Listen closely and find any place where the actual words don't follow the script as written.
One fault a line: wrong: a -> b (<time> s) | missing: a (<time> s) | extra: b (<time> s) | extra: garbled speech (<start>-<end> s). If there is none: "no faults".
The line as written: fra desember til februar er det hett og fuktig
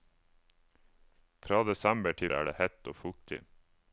missing: februar (2.3 s)